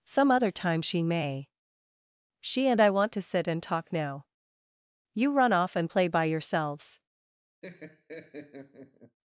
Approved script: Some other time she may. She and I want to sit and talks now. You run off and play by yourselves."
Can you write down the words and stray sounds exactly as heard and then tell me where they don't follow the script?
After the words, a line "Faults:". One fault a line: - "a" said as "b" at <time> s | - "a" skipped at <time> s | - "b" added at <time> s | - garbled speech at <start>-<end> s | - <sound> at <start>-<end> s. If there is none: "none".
Some other time she may. She and I want to sit and talk now. You run off and play by yourselves."
Faults:
- "talks" said as "talk" at 3.6 s
- laugh at 7.6-9.2 s